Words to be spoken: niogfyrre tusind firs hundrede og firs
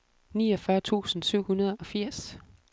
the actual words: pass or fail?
fail